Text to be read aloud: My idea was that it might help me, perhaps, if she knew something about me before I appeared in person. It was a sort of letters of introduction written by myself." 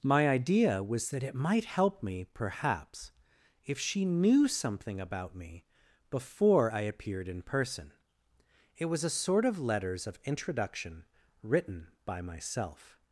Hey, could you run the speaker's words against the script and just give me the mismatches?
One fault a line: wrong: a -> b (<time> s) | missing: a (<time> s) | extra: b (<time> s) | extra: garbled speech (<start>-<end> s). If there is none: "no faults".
no faults